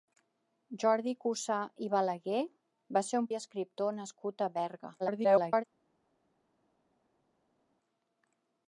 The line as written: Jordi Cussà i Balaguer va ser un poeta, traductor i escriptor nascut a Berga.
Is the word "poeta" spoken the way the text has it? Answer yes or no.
no